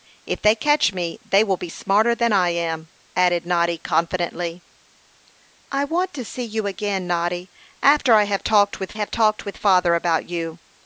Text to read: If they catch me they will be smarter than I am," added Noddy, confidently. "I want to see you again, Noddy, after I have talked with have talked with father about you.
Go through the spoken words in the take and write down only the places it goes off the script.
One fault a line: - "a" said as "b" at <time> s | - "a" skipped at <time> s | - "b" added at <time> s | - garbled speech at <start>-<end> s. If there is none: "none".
none